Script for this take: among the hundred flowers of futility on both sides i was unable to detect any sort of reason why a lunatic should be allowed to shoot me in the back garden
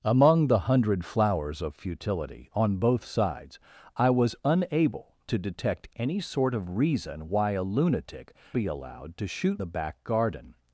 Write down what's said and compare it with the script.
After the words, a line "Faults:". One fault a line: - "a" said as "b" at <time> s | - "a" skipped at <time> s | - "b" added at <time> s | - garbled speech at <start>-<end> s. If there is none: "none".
among the hundred flowers of futility on both sides i was unable to detect any sort of reason why a lunatic be allowed to shoot the back garden
Faults:
- "should" skipped at 8.3 s
- "me in" skipped at 9.6 s